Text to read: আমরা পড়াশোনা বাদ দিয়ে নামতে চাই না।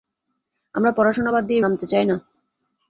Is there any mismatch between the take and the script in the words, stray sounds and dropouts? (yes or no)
no